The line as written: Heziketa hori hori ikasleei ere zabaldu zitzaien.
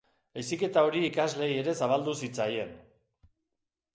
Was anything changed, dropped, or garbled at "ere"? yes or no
no